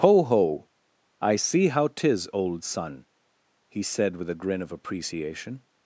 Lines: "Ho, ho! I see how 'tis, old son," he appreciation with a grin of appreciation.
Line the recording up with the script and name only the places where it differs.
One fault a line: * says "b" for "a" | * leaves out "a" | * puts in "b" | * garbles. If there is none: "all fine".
* says "said" for "appreciation"